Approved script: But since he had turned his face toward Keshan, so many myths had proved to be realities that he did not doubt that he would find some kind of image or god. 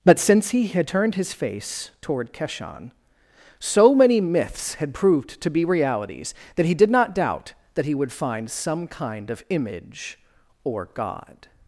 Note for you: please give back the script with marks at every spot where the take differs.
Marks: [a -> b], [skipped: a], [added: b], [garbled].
But since he had turned his face toward Keshan, so many myths had proved to be realities that he did not doubt that he would find some kind of image or god.